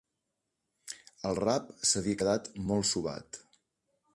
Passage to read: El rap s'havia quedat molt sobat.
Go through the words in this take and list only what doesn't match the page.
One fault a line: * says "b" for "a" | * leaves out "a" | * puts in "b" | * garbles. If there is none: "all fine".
all fine